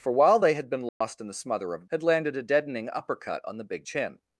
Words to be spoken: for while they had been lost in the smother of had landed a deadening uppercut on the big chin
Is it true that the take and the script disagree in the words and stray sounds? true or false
true